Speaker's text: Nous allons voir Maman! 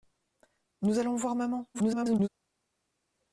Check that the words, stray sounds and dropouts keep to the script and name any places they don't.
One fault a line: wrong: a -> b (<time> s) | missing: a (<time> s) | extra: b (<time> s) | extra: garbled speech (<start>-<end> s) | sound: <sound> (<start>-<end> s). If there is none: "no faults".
extra: garbled speech (1.7-2.3 s)